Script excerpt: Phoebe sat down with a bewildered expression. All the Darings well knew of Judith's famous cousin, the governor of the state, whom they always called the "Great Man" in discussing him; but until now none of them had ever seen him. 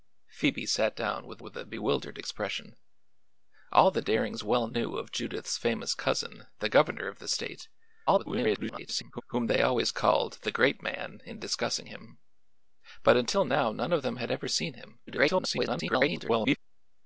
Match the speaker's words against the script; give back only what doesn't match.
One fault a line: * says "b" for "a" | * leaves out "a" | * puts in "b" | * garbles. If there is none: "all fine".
* puts in "with"
* garbles
* garbles